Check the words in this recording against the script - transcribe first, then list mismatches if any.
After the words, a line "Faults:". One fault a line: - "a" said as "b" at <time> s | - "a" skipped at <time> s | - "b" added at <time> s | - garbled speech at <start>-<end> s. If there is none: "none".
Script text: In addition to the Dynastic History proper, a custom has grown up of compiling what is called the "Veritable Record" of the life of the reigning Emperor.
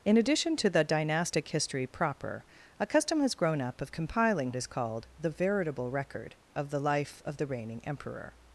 In addition to the Dynastic History proper, a custom has grown up of compiling is called the "Veritable Record" of the life of the reigning Emperor.
Faults:
- "what" skipped at 4.5 s